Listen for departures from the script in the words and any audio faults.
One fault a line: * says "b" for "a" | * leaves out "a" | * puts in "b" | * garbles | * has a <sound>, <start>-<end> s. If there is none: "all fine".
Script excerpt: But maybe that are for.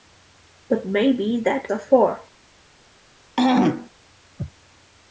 * has a throat clearing, 3.4-3.9 s